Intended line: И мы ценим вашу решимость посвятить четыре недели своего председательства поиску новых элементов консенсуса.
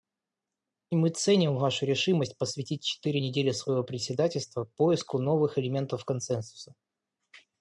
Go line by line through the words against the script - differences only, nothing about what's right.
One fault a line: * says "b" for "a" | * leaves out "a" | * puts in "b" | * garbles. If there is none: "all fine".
all fine